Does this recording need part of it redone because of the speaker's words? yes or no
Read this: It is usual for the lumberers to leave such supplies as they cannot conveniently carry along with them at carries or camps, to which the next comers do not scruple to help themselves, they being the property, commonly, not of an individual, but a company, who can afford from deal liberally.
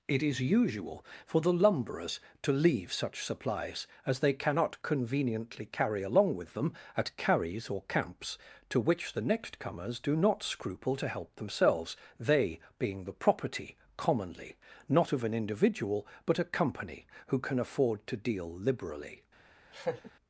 yes